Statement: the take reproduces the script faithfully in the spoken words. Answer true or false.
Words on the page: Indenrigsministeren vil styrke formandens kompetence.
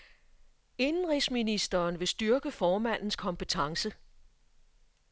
true